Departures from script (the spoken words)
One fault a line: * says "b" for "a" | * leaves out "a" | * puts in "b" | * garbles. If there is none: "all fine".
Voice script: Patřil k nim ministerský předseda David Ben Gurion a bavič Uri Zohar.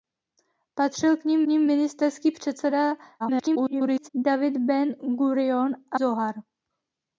* puts in "nim"
* garbles
* leaves out "bavič Uri"